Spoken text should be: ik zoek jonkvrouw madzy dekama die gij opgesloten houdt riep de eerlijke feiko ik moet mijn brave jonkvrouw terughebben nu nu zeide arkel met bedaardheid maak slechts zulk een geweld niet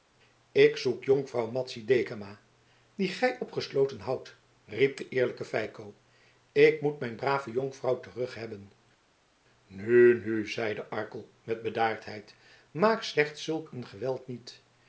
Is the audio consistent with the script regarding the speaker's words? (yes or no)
yes